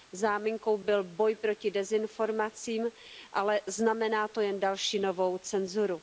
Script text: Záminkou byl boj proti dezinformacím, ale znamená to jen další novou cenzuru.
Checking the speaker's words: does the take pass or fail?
pass